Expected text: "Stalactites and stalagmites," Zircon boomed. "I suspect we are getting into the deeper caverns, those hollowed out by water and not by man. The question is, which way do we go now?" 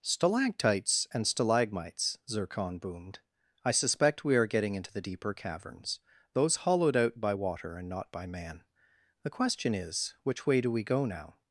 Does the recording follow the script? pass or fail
pass